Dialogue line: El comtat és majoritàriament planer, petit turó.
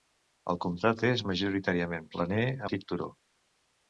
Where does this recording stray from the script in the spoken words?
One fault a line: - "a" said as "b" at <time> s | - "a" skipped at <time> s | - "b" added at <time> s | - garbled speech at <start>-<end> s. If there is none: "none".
none